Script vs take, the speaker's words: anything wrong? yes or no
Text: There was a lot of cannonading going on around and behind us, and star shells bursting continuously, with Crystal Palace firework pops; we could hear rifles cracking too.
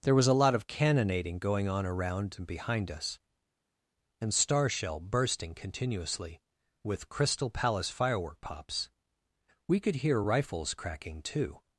yes